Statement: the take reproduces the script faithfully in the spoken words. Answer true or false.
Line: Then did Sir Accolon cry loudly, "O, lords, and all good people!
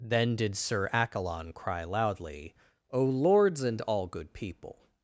true